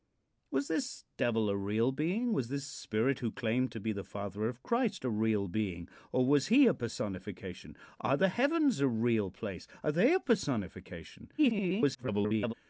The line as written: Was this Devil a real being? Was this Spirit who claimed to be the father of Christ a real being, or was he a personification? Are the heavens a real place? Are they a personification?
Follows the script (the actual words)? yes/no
no